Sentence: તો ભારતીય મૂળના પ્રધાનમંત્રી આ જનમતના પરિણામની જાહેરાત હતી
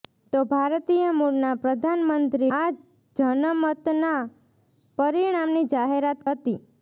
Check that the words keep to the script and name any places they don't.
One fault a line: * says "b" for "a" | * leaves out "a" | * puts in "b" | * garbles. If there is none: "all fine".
all fine